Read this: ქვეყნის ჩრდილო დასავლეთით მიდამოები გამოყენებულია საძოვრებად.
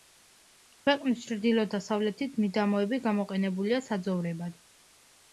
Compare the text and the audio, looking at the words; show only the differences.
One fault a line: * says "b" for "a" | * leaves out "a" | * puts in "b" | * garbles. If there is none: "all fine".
all fine